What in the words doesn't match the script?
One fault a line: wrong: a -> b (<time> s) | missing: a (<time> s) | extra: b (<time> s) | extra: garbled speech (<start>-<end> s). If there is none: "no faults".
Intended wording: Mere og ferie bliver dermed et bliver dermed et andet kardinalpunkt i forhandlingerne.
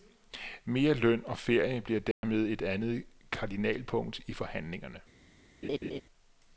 extra: løn (0.9 s)
missing: bliver dermed et (2.6 s)